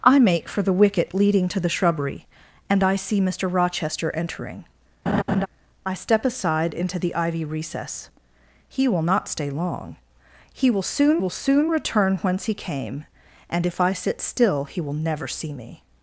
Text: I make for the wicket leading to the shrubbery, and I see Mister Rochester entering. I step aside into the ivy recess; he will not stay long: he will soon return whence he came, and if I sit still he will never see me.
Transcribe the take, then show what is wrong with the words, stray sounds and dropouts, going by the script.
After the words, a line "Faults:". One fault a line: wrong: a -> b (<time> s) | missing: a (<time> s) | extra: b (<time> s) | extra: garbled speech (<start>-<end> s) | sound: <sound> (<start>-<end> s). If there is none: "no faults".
I make for the wicket leading to the shrubbery, and I see Mister Rochester entering. I step aside into the ivy recess; he will not stay long: he will soon will soon return whence he came, and if I sit still he will never see me.
Faults:
sound: laugh (5.1-5.5 s)
extra: will soon (11.2 s)